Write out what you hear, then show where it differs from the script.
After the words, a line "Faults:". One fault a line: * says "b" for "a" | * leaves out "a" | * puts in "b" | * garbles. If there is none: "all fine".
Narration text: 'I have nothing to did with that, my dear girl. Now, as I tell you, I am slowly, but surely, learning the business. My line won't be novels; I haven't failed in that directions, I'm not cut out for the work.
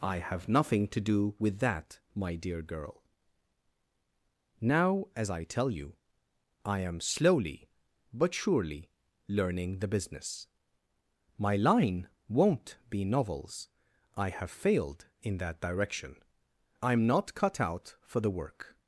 'I have nothing to do with that, my dear girl. Now, as I tell you, I am slowly, but surely, learning the business. My line won't be novels; I have failed in that direction, I'm not cut out for the work.
Faults:
* says "do" for "did"
* says "have" for "haven't"
* says "direction" for "directions"